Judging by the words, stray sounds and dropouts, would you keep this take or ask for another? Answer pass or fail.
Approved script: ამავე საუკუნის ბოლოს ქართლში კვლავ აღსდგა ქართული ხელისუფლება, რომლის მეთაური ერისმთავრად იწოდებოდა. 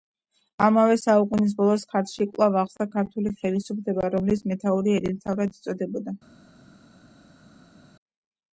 pass